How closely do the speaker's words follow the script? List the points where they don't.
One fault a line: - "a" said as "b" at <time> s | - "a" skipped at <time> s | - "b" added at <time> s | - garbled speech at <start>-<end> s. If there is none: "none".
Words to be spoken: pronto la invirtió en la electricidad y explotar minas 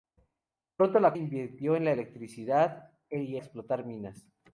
none